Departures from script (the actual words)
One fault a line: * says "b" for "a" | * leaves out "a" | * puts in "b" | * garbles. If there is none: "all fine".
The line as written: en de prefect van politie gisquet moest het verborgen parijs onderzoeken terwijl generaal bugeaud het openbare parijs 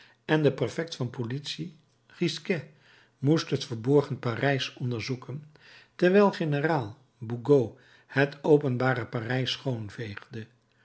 all fine